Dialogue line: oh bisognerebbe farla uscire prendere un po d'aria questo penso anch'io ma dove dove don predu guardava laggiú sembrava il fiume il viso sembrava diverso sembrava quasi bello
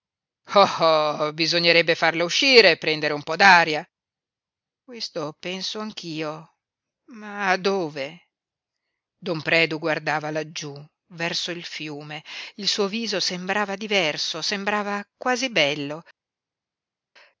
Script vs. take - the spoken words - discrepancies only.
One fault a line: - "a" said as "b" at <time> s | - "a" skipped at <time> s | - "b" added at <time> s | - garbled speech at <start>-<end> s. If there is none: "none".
- "dove" skipped at 8.3 s
- "sembrava" said as "verso" at 11.1 s
- "suo" added at 12.7 s